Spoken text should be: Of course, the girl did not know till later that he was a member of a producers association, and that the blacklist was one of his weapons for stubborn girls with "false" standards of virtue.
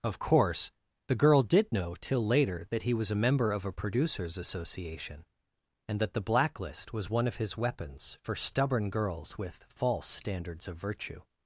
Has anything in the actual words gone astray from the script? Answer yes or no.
yes